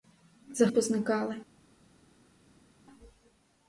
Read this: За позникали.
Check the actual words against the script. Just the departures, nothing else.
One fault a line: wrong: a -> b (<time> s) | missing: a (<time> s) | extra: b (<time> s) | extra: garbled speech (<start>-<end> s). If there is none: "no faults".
no faults